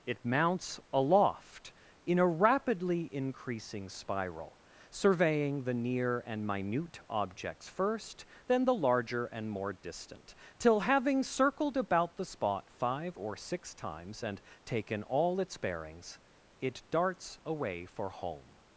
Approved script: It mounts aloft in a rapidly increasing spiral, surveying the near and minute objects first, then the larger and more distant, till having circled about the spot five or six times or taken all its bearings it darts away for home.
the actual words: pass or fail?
fail